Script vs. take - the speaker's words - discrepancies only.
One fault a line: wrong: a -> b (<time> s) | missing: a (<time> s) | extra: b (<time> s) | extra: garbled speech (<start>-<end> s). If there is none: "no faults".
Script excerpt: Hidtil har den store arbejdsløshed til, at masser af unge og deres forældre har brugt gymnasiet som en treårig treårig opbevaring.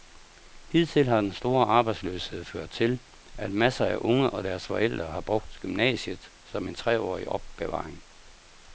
extra: ført (2.4 s)
missing: treårig (7.3 s)